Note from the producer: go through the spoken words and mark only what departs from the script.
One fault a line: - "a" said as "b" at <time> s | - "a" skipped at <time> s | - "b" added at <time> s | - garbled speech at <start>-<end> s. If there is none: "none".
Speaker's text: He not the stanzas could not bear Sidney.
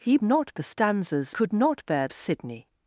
none